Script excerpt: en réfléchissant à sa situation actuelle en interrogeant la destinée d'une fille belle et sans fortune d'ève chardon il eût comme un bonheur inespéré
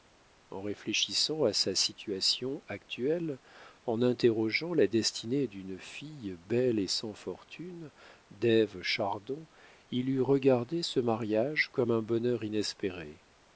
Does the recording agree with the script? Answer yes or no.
no